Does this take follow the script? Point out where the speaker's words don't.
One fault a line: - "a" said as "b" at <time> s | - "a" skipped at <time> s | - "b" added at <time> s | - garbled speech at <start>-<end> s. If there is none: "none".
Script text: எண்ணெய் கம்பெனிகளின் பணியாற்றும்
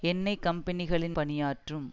none